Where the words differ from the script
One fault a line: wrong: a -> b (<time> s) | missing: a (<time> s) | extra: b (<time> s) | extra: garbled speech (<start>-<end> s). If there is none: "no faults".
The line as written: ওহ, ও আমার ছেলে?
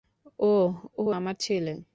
no faults